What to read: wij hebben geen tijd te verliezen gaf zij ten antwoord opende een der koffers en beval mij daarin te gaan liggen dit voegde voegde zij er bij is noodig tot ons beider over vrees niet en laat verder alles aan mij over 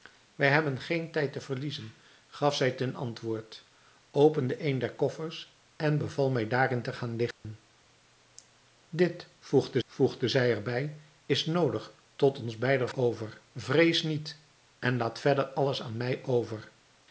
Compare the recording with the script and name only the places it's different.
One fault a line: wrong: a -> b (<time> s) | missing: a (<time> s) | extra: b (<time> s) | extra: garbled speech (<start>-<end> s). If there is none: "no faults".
no faults